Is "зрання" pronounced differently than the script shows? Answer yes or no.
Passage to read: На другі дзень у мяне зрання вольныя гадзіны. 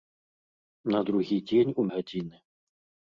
yes